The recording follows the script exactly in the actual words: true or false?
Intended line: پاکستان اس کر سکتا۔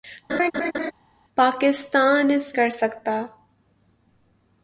true